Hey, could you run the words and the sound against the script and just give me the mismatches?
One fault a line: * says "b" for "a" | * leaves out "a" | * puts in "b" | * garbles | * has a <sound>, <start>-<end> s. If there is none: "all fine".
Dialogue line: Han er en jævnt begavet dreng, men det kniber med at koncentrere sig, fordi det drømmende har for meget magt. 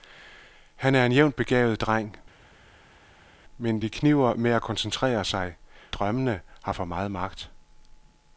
* leaves out "fordi det"